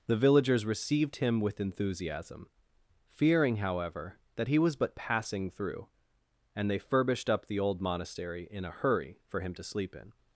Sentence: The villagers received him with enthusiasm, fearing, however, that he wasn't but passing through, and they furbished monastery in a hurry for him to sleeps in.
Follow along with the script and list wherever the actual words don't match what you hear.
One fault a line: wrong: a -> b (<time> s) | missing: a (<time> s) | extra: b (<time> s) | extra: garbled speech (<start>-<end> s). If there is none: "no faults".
wrong: wasn't -> was (4.6 s)
extra: up the old (7.3 s)
wrong: sleeps -> sleep (9.6 s)